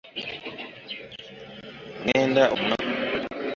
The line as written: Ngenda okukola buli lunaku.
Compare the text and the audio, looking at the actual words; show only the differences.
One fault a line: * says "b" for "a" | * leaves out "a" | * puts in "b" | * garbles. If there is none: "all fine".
* leaves out "okukola buli"